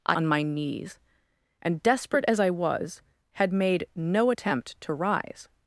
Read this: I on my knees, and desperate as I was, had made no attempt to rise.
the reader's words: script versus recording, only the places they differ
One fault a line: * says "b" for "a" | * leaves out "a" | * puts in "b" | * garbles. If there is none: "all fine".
all fine